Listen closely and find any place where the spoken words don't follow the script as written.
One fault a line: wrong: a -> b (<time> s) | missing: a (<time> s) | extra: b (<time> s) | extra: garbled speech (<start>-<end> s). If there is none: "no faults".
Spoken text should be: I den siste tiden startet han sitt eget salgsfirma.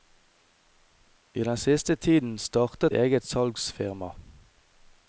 missing: han sitt (3.0 s)